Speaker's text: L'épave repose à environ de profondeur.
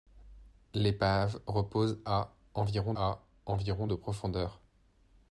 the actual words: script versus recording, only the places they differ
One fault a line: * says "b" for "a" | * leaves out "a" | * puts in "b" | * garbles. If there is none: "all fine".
* puts in "à environ"